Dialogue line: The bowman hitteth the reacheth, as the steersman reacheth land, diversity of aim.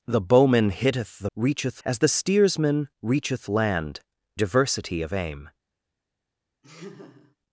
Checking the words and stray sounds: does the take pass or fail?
fail